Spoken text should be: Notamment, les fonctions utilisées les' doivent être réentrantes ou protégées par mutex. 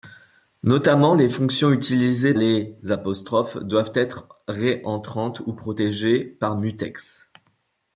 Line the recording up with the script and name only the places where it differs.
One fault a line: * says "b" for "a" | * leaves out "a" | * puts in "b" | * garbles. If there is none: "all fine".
all fine